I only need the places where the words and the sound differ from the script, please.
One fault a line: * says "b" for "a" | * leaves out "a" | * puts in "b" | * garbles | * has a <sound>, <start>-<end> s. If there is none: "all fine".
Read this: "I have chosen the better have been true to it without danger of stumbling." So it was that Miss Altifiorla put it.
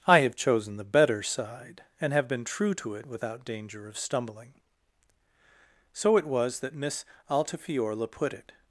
* puts in "side and"